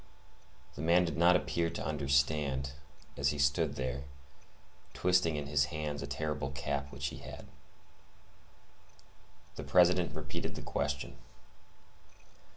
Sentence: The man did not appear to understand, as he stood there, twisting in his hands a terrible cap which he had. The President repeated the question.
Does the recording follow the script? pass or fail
pass